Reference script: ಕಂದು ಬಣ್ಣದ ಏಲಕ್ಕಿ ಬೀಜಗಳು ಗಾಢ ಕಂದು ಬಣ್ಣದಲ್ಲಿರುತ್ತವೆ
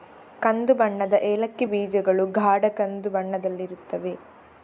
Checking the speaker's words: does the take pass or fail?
pass